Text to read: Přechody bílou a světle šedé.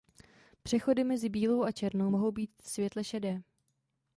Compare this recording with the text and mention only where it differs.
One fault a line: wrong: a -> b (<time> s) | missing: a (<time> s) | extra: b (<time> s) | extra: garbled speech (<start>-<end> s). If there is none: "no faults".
extra: mezi (1.0 s)
extra: černou mohou být (1.7 s)